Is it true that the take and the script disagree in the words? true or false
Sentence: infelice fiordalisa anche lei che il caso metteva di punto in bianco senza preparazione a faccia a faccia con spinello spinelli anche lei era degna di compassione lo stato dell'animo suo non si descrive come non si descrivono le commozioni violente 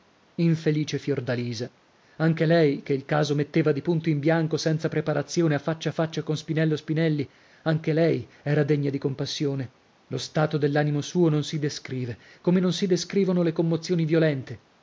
false